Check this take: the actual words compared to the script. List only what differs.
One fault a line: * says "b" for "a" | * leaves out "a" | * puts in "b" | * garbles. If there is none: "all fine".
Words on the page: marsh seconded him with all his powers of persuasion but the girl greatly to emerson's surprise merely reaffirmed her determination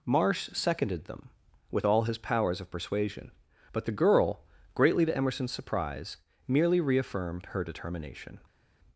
* says "them" for "him"